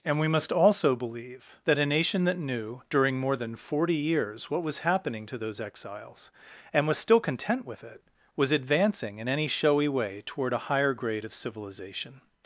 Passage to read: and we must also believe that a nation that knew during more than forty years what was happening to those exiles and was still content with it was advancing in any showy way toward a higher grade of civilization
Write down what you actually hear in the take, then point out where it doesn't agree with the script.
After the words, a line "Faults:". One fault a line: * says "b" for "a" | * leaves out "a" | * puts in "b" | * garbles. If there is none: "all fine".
and we must also believe that a nation that knew during more than forty years what was happening to those exiles and was still content with it was advancing in any showy way toward a higher grade of civilization
Faults:
all fine